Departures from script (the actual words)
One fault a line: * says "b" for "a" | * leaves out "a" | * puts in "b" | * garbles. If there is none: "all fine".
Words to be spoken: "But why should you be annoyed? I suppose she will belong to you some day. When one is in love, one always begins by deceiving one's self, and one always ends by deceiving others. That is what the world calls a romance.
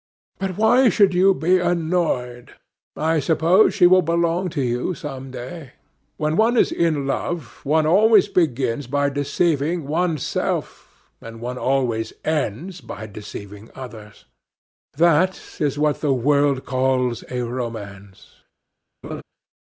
all fine